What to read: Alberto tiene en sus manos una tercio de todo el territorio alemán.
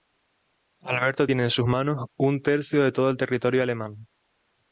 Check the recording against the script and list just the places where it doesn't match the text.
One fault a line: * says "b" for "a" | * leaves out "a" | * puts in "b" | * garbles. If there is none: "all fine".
* says "un" for "una"